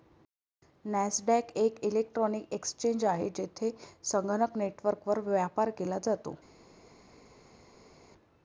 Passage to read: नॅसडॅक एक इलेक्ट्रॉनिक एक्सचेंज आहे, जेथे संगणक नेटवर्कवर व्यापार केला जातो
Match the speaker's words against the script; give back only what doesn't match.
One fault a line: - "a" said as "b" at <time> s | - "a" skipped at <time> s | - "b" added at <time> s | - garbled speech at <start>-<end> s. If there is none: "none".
none